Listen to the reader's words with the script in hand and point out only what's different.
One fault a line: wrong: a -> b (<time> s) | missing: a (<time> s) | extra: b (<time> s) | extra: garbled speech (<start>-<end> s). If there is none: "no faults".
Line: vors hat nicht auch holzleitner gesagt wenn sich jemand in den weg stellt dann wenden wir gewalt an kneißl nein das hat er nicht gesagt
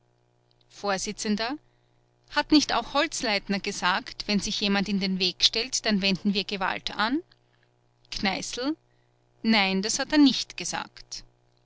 no faults